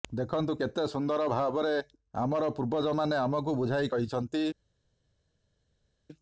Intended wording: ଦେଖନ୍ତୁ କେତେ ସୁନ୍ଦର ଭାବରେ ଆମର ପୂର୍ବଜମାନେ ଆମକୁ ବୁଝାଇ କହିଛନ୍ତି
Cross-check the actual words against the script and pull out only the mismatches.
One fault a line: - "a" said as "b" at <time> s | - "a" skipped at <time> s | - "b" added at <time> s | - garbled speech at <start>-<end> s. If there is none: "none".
none